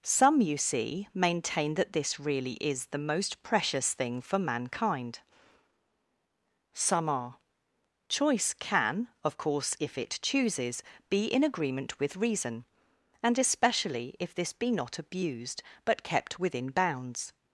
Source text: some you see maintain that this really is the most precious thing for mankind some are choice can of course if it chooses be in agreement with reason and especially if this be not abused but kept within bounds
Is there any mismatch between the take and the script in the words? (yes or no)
no